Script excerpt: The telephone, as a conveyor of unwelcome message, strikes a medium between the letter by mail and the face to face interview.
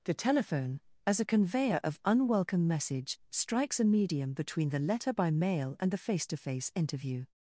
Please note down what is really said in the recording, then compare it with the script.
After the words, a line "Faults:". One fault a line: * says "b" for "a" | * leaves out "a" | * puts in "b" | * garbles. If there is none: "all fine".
The telephone, as a conveyor of unwelcome message, strikes a medium between the letter by mail and the face to face interview.
Faults:
all fine